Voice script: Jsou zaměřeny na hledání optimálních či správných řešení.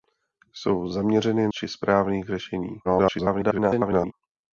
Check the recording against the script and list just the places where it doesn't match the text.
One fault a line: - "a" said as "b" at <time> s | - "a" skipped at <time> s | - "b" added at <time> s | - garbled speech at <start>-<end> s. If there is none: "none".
- "na hledání optimálních" skipped at 1.5 s
- garbled speech at 2.8-4.1 s